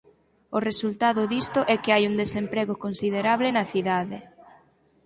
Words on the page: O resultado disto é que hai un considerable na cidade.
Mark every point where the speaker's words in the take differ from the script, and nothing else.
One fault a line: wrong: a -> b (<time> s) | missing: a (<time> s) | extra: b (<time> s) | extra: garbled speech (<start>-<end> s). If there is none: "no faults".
extra: desemprego (2.2 s)